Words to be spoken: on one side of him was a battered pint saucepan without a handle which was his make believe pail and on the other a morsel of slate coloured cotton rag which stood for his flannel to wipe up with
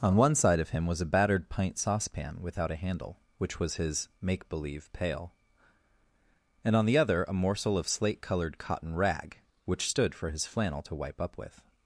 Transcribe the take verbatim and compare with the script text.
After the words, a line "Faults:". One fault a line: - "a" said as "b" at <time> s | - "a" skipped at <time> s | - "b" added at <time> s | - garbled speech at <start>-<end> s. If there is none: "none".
on one side of him was a battered pint saucepan without a handle which was his make believe pail and on the other a morsel of slate coloured cotton rag which stood for his flannel to wipe up with
Faults:
none